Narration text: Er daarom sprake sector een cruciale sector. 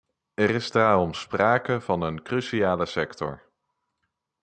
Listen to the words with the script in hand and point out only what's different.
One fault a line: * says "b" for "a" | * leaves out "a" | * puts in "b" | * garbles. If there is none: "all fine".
* puts in "is"
* says "van" for "sector"